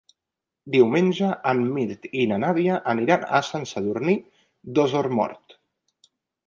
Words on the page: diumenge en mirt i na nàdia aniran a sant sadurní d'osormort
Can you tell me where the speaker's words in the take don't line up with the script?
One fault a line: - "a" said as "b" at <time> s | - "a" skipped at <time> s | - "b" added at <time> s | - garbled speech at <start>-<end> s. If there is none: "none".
none